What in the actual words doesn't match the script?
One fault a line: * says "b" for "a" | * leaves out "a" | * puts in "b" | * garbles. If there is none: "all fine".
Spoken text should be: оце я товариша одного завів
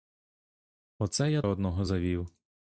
* leaves out "товариша"